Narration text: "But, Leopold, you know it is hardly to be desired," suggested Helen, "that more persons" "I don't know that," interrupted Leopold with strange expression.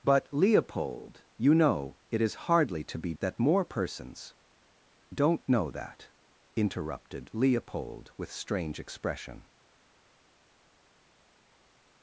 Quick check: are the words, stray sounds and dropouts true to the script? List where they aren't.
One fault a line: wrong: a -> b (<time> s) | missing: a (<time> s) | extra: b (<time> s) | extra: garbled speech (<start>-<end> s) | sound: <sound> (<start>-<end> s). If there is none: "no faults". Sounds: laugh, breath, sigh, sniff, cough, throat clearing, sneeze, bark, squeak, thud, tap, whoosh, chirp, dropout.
missing: desired suggested Helen (3.1 s)
missing: I (4.4 s)